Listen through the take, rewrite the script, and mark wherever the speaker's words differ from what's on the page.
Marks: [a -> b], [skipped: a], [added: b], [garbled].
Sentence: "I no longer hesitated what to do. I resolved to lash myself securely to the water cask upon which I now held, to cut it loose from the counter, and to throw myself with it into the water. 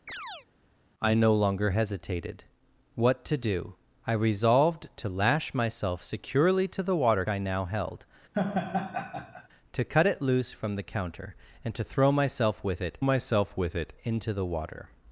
"I no longer hesitated what to do. I resolved to lash myself securely to the water [skipped: cask upon which] I now held, to cut it loose from the counter, and to throw myself with it [added: myself with it] into the water.